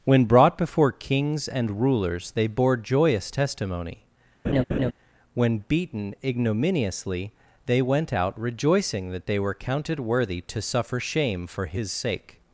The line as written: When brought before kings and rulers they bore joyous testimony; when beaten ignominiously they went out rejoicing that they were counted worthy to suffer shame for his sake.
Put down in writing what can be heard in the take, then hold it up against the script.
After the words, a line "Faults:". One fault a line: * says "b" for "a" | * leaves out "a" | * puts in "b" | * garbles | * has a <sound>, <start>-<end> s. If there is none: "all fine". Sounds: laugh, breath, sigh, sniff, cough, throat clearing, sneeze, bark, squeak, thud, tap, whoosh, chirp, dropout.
When brought before kings and rulers they bore joyous testimony; when beaten ignominiously they went out rejoicing that they were counted worthy to suffer shame for his sake.
Faults:
* has a laugh, 4.4-4.9 s